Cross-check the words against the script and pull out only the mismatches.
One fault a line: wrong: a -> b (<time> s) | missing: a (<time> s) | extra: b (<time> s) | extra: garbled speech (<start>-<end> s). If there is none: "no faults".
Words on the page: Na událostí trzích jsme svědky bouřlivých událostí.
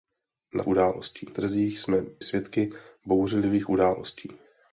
no faults